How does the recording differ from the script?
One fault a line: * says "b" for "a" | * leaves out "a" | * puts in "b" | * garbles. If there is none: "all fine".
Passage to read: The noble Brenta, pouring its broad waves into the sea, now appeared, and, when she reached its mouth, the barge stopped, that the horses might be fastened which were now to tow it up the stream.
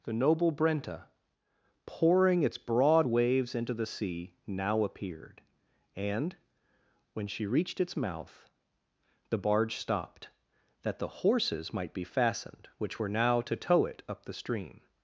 all fine